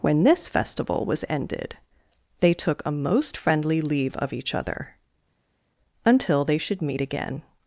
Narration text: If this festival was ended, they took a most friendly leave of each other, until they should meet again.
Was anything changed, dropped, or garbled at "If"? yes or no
yes